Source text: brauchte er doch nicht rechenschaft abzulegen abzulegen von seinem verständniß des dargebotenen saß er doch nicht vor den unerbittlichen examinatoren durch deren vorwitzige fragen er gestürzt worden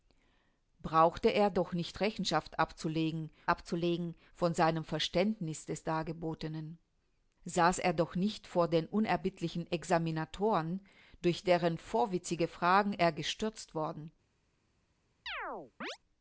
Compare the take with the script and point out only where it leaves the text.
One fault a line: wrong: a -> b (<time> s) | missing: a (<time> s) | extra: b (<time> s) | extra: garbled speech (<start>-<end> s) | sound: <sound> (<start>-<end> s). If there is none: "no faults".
sound: chirp (15.3-16.0 s)